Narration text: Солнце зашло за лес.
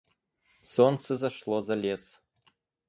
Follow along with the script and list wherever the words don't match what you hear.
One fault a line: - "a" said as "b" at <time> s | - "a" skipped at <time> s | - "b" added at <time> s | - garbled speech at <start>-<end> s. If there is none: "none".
none